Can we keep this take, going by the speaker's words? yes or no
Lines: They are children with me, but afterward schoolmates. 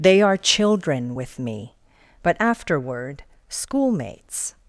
yes